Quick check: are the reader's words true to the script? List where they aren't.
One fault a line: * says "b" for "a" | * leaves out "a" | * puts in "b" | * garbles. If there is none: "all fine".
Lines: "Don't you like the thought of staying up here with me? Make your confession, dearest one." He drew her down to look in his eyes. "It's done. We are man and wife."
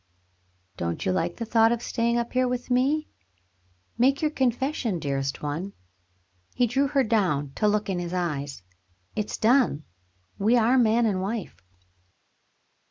all fine